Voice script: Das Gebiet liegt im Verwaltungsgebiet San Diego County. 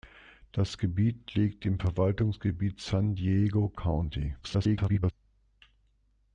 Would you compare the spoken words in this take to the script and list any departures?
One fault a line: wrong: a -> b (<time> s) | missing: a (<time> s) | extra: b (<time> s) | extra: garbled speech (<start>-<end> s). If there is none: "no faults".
extra: garbled speech (4.4-5.1 s)